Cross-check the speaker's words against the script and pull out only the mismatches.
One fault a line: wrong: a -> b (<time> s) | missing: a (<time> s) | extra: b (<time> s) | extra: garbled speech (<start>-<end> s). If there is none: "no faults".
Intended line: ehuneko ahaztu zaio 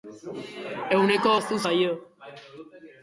no faults